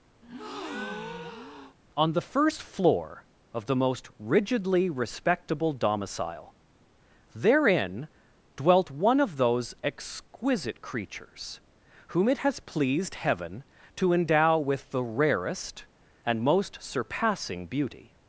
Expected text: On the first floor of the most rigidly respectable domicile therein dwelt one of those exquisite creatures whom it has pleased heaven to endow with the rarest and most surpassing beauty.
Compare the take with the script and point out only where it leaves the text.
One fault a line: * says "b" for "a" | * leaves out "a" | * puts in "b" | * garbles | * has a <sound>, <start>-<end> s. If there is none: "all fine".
* has a breath, 0.2-1.8 s